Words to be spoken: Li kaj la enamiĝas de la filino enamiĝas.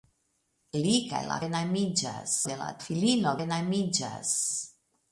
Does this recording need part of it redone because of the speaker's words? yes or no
no